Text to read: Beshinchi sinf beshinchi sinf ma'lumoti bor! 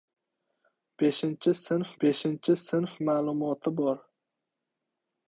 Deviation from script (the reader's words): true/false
false